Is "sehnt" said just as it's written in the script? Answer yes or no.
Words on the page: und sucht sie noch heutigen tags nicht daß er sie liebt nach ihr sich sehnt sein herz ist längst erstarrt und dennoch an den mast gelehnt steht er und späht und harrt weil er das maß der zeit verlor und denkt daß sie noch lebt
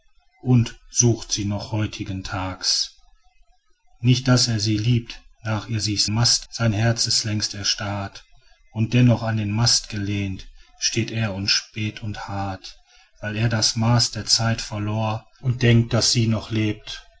no